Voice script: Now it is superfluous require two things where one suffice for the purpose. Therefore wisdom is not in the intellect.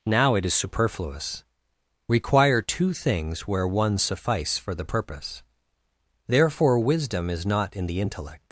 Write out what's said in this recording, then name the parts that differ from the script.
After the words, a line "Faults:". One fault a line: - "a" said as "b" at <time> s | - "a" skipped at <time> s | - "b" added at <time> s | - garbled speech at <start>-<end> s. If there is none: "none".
Now it is superfluous require two things where one suffice for the purpose. Therefore wisdom is not in the intellect.
Faults:
none